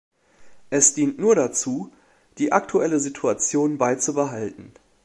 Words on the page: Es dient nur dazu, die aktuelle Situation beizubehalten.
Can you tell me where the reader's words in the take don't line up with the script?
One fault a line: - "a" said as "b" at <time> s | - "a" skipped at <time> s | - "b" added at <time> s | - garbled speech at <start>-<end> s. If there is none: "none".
none